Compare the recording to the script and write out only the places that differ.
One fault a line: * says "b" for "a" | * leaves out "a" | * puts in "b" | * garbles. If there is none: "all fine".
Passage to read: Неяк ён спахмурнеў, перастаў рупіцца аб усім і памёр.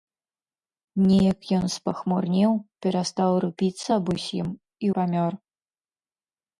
all fine